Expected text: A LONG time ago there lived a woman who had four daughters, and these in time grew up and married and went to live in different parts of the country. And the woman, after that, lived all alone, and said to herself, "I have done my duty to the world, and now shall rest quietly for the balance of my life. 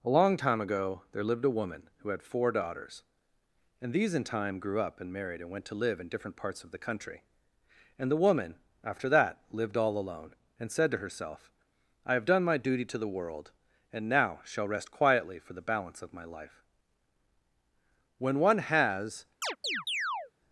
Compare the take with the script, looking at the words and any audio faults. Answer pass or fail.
fail